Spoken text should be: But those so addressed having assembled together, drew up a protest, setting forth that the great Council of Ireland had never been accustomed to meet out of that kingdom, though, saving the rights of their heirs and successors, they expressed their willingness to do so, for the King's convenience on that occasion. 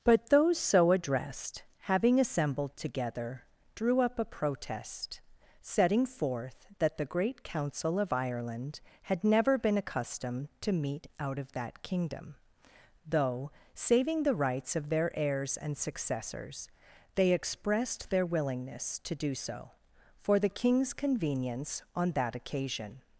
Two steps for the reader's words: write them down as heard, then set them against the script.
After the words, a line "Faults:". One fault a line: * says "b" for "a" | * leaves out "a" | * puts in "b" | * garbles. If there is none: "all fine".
But those so addressed having assembled together, drew up a protest, setting forth that the great Council of Ireland had never been accustomed to meet out of that kingdom, though, saving the rights of their heirs and successors, they expressed their willingness to do so, for the King's convenience on that occasion.
Faults:
all fine